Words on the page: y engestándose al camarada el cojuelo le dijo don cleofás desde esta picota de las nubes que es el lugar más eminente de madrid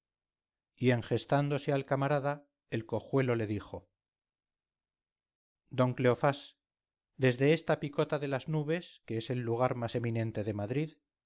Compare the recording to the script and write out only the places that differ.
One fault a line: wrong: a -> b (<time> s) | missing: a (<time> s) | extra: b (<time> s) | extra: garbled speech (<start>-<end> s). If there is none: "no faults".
no faults